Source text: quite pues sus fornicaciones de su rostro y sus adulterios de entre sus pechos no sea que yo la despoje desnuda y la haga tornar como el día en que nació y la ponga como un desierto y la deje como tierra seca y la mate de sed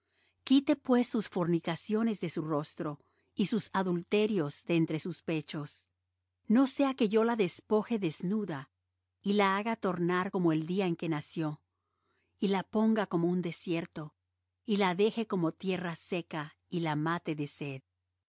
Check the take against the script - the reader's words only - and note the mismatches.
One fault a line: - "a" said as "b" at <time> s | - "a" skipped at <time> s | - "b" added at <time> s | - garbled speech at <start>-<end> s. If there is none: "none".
none